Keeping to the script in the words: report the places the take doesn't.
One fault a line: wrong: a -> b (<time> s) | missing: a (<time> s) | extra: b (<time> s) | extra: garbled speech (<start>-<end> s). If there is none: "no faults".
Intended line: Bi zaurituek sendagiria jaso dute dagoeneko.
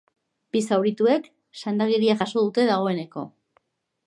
no faults